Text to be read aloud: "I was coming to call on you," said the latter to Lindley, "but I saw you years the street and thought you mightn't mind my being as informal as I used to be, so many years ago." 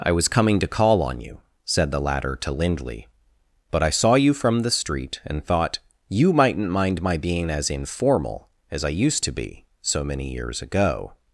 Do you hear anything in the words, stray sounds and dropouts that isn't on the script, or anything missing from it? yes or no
yes